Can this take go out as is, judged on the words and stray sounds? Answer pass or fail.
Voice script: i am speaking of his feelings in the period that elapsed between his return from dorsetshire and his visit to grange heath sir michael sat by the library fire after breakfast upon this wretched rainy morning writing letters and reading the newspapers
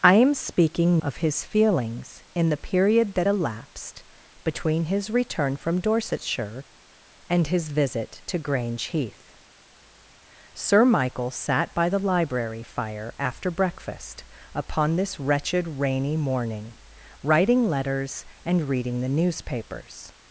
pass